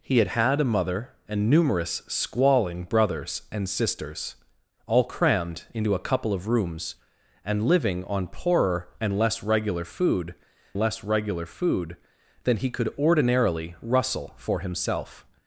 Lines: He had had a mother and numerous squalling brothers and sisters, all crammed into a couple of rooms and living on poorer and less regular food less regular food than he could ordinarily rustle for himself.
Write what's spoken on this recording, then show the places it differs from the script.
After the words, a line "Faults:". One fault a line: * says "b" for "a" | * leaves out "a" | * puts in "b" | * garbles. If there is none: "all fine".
He had had a mother and numerous squalling brothers and sisters, all crammed into a couple of rooms and living on poorer and less regular food less regular food than he could ordinarily rustle for himself.
Faults:
all fine